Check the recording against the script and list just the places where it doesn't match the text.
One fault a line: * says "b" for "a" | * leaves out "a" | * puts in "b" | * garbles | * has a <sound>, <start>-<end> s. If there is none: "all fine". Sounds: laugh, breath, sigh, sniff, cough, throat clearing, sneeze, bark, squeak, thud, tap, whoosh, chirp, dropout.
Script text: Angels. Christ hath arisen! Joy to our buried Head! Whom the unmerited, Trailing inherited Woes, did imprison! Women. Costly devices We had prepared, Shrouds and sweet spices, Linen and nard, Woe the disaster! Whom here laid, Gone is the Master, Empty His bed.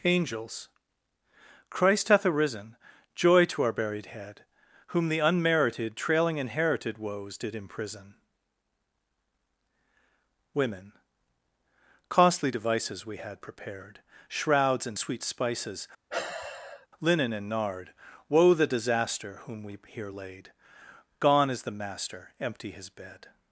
* has a sigh, 16.1-16.9 s
* puts in "we"